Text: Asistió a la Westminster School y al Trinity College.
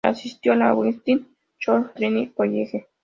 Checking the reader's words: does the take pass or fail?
fail